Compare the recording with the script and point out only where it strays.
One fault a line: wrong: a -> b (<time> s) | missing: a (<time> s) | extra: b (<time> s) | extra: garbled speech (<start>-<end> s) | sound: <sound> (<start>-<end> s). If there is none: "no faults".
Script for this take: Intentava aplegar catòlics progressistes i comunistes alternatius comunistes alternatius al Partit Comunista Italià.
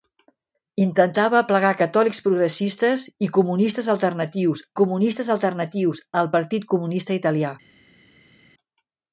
no faults